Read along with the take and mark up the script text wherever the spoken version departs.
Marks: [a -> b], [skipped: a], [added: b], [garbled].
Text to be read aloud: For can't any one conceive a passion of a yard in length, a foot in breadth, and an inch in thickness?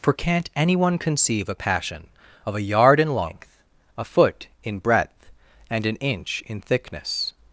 For can't any one conceive a passion of a yard in length, a foot in breadth, and an inch in thickness?